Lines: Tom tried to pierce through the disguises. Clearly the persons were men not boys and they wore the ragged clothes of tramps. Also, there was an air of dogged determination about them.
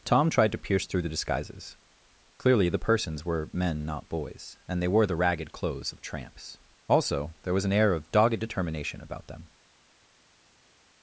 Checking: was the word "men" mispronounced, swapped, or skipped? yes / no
no